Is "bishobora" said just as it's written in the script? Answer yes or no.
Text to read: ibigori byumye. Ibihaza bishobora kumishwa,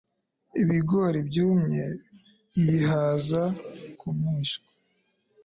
no